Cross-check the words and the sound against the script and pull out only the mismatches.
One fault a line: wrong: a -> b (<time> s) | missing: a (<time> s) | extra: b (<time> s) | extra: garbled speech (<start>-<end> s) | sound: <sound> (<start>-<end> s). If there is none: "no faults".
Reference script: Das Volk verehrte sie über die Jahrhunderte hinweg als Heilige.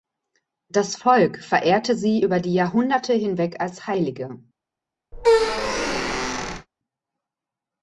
sound: squeak (5.1-6.7 s)